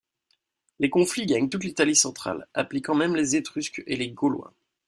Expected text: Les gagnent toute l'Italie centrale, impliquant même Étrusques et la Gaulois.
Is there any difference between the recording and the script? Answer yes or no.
yes